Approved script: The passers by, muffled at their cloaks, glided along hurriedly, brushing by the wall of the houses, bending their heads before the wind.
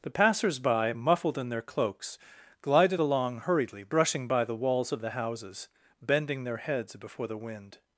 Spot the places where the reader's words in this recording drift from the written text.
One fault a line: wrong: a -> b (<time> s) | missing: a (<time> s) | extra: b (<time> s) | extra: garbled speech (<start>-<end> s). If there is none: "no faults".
wrong: at -> in (1.4 s)
wrong: wall -> walls (4.5 s)